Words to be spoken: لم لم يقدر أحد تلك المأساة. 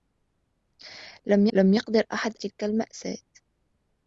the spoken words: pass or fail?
pass